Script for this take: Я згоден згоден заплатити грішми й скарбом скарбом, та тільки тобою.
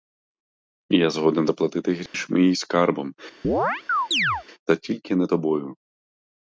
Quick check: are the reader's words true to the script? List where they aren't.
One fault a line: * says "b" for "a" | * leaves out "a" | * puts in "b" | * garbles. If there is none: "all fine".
* leaves out "згоден"
* leaves out "скарбом"
* puts in "не"